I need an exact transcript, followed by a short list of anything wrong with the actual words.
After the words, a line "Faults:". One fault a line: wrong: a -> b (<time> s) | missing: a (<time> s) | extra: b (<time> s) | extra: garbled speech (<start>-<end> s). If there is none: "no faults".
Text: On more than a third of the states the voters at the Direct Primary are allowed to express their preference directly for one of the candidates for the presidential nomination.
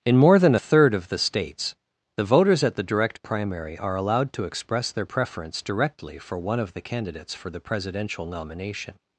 In more than a third of the states the voters at the Direct Primary are allowed to express their preference directly for one of the candidates for the presidential nomination.
Faults:
wrong: On -> In (0.0 s)